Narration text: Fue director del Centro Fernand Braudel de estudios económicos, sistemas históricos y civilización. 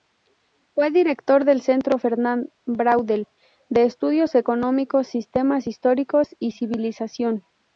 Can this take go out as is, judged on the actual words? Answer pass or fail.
pass